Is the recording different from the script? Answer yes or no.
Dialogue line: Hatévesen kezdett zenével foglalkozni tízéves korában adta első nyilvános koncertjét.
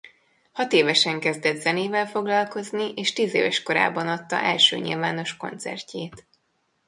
yes